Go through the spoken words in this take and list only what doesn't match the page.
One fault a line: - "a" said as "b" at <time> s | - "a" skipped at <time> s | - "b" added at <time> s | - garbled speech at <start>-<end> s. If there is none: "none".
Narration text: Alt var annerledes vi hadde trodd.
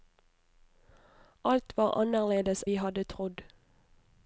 none